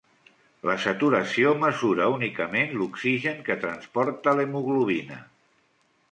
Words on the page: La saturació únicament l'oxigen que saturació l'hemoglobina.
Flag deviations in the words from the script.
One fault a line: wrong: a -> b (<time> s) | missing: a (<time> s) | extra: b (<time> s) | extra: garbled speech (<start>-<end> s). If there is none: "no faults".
extra: mesura (1.6 s)
wrong: saturació -> transporta (3.6 s)